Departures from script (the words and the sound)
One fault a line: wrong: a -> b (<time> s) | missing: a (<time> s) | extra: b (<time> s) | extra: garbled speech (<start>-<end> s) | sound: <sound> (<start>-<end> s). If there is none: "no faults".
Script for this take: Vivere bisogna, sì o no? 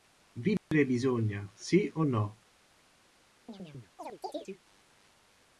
sound: dropout (0.6-0.7 s)
sound: chirp (3.5-4.6 s)